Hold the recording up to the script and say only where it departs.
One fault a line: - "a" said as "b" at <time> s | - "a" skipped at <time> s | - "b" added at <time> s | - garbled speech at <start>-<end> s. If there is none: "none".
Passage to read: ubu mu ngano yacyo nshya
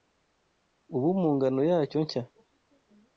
none